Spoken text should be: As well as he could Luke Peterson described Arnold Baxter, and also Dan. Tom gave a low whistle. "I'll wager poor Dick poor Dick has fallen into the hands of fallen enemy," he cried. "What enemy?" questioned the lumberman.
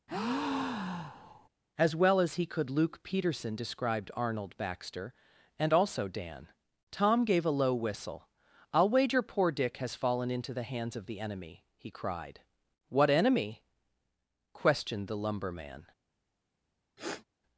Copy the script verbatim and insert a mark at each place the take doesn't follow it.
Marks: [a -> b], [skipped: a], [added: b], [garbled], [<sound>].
[breath] As well as he could Luke Peterson described Arnold Baxter, and also Dan. Tom gave a low whistle. "I'll wager poor Dick [skipped: poor Dick] has fallen into the hands of [fallen -> the] enemy," he cried. "What enemy?" questioned the lumberman. [sniff]